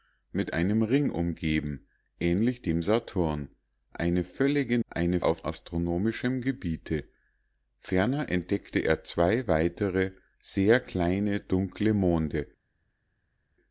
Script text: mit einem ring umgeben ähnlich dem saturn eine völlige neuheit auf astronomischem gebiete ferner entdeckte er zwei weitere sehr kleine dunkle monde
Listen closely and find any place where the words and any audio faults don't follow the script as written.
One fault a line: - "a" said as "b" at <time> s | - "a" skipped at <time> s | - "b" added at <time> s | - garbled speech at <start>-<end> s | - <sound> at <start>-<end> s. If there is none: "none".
- "neuheit" said as "eine" at 4.9 s